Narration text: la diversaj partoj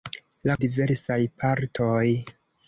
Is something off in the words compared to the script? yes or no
no